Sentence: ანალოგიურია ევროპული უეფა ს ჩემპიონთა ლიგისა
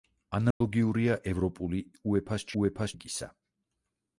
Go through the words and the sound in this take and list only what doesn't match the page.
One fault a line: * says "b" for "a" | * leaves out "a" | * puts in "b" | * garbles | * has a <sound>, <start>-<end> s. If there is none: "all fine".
* has a dropout, 0.5-0.6 s
* says "უეფა" for "ჩემპიონთა"